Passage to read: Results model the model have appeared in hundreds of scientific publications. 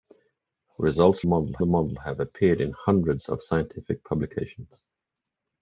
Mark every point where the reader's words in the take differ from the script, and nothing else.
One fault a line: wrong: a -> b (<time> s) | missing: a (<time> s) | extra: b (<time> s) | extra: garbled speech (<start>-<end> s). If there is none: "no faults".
no faults